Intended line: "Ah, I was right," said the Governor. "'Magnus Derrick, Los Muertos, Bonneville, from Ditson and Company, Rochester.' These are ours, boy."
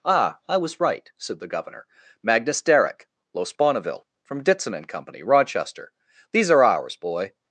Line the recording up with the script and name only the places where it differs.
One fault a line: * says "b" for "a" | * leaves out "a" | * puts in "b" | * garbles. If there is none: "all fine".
* leaves out "Muertos"